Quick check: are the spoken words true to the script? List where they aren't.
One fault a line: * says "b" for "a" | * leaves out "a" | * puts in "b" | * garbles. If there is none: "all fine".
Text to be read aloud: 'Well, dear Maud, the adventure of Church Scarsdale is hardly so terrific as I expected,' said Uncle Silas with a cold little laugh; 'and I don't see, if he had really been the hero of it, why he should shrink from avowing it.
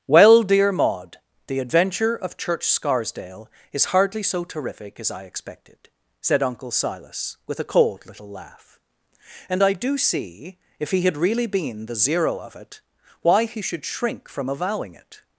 * says "do" for "don't"
* says "zero" for "hero"